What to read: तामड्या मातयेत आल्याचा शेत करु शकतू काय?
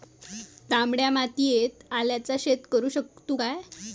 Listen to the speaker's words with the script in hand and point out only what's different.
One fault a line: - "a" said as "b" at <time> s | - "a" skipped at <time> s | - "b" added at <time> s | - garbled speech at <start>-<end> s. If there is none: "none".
none